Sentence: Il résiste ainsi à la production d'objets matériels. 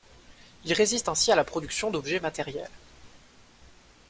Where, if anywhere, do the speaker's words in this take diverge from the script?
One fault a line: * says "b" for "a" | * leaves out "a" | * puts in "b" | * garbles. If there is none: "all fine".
all fine